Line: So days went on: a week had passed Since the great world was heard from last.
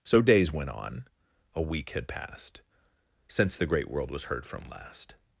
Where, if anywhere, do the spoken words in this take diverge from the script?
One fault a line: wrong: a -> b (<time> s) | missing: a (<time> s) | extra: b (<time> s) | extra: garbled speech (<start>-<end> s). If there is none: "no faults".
no faults